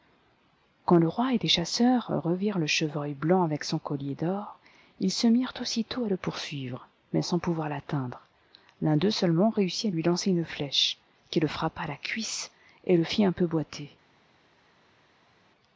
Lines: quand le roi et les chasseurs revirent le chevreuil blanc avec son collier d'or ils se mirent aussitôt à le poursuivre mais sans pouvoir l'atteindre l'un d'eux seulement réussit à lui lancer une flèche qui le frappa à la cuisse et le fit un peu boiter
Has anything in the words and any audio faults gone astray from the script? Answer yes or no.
no